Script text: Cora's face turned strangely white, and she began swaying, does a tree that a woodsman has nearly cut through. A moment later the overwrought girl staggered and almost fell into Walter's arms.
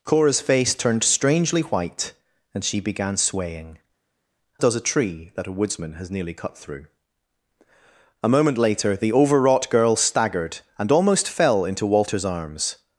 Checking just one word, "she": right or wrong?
right